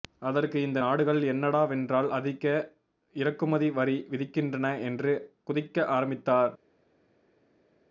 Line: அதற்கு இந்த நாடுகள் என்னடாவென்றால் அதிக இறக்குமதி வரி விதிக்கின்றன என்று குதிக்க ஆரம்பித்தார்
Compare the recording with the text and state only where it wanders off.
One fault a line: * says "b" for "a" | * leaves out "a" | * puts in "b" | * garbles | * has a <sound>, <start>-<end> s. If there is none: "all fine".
all fine